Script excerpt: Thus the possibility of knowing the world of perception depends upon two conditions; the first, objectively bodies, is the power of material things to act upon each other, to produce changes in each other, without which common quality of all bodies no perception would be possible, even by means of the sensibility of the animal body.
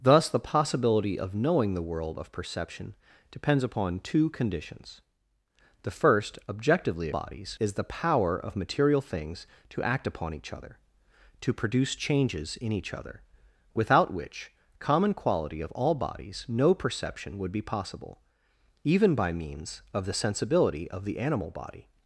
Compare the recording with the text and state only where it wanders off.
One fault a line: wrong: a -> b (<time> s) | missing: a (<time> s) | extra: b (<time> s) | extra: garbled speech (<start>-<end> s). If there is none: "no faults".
no faults